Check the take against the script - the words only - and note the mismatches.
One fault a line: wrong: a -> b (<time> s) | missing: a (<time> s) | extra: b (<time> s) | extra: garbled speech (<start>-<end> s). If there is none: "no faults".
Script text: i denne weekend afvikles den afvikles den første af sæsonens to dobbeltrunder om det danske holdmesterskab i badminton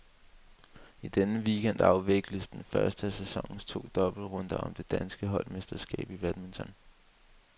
missing: afvikles den (2.6 s)